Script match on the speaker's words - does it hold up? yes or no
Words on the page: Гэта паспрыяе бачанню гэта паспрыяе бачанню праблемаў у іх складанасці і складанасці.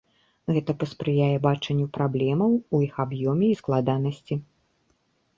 no